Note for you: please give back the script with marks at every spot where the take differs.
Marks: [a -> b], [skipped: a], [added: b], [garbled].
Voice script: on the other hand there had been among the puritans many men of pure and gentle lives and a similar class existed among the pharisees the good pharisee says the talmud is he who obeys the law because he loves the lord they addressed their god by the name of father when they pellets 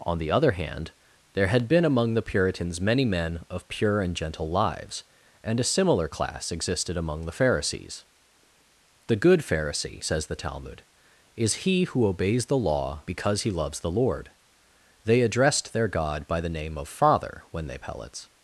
on the other hand there had been among the puritans many men of pure and gentle lives and a similar class existed among the pharisees the good pharisee says the talmud is he who obeys the law because he loves the lord they addressed their god by the name of father when they pellets